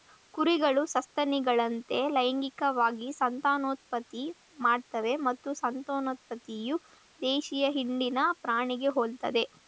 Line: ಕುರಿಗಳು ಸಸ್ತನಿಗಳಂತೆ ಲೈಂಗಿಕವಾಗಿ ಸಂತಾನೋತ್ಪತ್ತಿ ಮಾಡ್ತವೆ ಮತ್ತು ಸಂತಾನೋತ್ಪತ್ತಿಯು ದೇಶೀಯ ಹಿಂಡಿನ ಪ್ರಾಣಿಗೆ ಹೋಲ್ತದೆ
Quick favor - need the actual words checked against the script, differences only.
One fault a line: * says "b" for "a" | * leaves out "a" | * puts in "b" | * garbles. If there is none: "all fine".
all fine